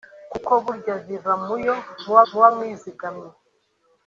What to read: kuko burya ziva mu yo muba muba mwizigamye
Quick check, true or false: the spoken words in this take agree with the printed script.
true